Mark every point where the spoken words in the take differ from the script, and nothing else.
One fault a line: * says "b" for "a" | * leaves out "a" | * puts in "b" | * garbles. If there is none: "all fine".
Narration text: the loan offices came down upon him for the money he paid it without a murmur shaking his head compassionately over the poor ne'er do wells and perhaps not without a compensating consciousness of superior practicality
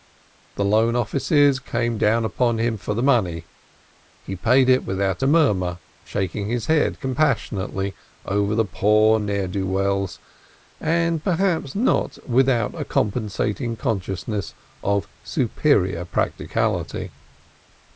all fine